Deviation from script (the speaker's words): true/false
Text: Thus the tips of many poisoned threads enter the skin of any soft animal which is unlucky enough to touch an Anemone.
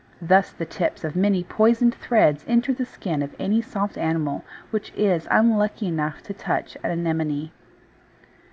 false